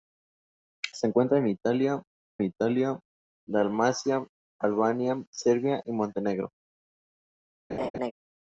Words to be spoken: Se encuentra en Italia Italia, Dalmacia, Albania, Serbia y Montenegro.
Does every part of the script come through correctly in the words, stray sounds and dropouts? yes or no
no